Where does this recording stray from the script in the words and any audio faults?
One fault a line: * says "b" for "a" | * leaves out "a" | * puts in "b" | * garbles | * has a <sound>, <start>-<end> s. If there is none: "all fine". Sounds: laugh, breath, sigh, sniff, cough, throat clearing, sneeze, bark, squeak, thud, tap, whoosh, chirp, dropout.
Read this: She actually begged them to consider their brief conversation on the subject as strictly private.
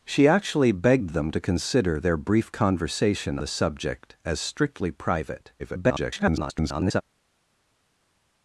* leaves out "on"
* garbles